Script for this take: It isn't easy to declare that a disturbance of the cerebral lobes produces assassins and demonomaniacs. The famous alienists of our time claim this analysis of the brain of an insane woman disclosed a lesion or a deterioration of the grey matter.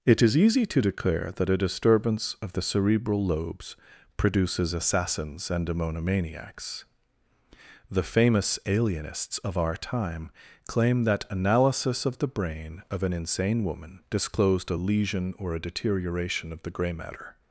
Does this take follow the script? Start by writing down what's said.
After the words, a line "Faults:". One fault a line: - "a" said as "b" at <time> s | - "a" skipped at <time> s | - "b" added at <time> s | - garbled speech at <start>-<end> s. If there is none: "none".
It is easy to declare that a disturbance of the cerebral lobes produces assassins and demonomaniacs. The famous alienists of our time claim that analysis of the brain of an insane woman disclosed a lesion or a deterioration of the grey matter.
Faults:
- "isn't" said as "is" at 0.2 s
- "this" said as "that" at 11.0 s